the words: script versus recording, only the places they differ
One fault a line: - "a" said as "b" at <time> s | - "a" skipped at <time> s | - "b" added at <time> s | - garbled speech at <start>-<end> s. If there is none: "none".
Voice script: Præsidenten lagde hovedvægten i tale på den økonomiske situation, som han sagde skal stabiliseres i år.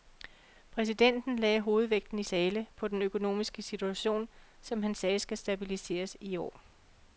none